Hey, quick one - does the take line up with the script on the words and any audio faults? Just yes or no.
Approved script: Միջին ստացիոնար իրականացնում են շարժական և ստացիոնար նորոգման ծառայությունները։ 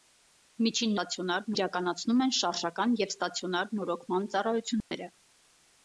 no